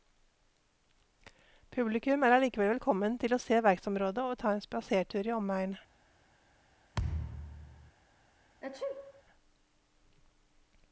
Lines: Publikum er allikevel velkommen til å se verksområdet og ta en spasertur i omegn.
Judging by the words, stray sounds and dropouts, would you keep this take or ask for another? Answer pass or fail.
fail